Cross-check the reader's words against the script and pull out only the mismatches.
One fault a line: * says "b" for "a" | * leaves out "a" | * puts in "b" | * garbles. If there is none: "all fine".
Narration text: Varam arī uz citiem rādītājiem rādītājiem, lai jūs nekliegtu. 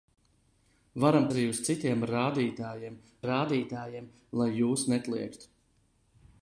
all fine